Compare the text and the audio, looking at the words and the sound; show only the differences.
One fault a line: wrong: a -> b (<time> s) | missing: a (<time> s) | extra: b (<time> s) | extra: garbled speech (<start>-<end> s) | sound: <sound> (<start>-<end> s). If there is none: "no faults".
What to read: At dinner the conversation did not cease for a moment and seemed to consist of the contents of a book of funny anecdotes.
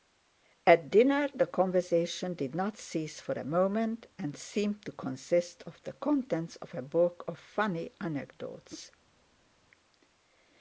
no faults